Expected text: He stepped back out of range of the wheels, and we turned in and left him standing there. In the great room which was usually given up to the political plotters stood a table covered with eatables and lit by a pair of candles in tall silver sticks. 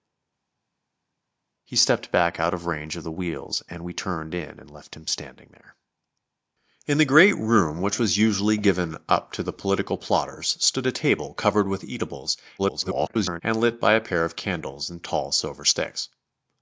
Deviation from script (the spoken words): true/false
true